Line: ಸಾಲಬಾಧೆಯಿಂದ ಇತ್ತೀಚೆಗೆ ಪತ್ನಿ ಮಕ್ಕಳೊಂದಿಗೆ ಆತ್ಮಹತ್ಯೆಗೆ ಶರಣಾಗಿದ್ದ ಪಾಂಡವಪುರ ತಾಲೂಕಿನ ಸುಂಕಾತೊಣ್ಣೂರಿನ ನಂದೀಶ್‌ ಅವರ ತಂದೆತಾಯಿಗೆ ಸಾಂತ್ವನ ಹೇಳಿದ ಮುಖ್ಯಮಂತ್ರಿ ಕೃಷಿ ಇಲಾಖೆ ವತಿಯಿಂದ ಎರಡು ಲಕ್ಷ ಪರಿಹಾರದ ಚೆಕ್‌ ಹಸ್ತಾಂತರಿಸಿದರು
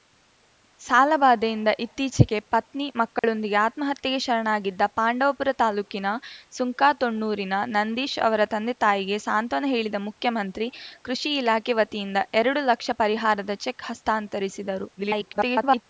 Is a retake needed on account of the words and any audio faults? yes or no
yes